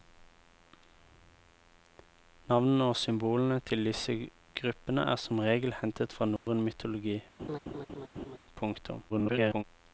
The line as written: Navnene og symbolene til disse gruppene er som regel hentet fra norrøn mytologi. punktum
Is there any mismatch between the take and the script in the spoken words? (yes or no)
yes